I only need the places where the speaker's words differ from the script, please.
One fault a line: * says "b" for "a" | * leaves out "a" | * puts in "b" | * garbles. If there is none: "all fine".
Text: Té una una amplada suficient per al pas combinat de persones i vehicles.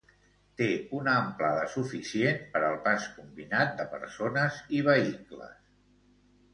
* leaves out "una"